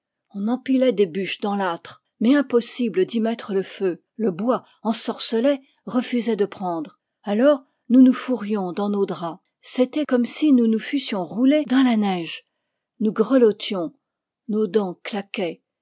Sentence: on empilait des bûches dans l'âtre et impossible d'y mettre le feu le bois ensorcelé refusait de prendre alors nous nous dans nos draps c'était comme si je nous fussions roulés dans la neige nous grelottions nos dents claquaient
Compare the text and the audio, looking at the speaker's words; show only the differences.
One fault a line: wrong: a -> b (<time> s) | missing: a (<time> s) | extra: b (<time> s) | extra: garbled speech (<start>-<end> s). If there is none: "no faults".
wrong: et -> mais (2.2 s)
extra: fourrions (8.1 s)
wrong: je -> nous (10.5 s)